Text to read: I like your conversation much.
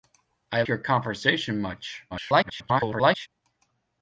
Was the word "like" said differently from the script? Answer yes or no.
yes